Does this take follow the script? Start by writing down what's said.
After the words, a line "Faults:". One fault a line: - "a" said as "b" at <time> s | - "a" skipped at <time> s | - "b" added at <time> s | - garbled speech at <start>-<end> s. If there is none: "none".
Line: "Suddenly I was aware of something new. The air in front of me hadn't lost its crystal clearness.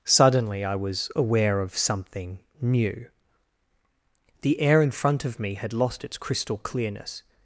"Suddenly I was aware of something new. The air in front of me had lost its crystal clearness.
Faults:
- "hadn't" said as "had" at 5.5 s